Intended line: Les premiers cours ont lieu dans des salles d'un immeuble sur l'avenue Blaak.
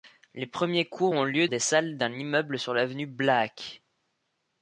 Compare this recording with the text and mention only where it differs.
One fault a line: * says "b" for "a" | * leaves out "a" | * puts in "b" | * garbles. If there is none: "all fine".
* leaves out "dans"